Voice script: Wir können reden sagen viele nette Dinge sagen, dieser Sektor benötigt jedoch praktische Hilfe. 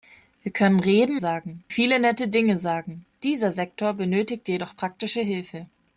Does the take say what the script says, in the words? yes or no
yes